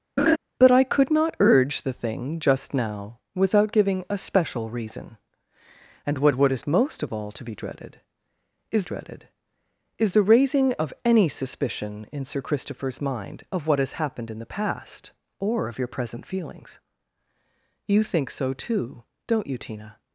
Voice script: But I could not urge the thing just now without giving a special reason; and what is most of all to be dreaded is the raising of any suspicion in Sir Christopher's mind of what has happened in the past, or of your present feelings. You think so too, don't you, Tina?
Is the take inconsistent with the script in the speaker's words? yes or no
yes